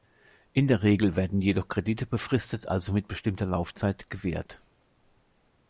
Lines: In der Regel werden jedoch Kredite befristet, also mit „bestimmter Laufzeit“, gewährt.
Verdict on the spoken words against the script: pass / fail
pass